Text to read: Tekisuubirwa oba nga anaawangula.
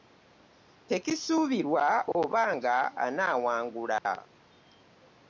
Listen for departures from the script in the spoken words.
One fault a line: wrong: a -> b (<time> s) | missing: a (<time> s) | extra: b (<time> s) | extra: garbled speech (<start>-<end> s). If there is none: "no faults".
no faults